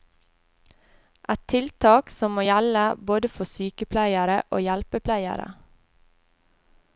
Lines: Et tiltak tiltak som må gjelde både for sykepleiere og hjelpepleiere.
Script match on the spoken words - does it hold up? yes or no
no